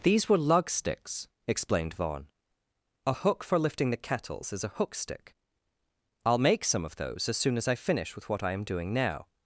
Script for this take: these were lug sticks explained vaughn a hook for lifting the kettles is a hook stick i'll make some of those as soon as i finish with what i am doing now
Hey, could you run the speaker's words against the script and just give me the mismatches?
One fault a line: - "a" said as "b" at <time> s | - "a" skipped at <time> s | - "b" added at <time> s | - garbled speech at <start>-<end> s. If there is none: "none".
none